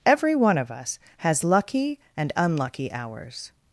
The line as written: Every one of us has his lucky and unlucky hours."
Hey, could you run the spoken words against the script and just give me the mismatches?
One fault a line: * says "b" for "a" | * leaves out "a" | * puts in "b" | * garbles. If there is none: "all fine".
* leaves out "his"